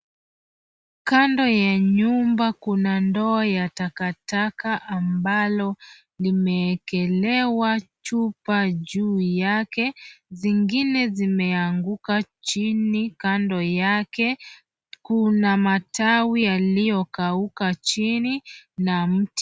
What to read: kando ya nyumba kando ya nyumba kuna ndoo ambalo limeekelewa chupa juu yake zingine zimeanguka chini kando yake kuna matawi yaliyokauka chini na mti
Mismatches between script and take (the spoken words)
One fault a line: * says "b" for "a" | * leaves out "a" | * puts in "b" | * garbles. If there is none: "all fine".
* says "kuna ndoo" for "kando"
* says "takataka" for "nyumba kuna ndoo"